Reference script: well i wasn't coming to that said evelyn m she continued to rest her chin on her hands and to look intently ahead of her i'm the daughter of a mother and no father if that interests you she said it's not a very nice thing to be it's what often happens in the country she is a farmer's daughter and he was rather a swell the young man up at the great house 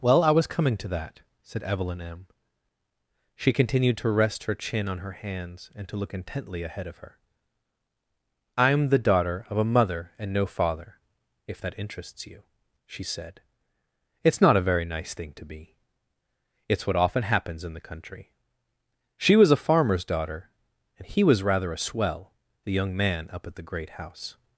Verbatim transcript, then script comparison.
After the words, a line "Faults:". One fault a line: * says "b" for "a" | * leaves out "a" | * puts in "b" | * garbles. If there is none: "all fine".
well i was coming to that said evelyn m she continued to rest her chin on her hands and to look intently ahead of her i'm the daughter of a mother and no father if that interests you she said it's not a very nice thing to be it's what often happens in the country she was a farmer's daughter and he was rather a swell the young man up at the great house
Faults:
* says "was" for "wasn't"
* says "was" for "is"